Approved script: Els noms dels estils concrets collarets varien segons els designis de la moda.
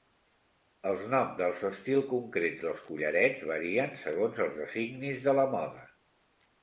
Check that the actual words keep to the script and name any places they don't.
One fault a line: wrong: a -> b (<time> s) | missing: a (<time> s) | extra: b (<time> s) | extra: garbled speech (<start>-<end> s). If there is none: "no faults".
extra: dels (2.7 s)